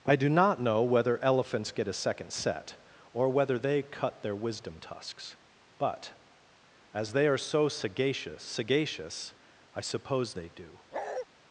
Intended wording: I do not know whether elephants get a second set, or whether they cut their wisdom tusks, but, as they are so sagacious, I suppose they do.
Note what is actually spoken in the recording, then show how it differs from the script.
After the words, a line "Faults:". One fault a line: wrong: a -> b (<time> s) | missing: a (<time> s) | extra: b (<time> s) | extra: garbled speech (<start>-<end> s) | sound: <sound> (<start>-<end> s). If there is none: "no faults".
I do not know whether elephants get a second set, or whether they cut their wisdom tusks, but, as they are so sagacious sagacious, I suppose they do.
Faults:
extra: sagacious (8.4 s)
sound: bark (10.9-11.3 s)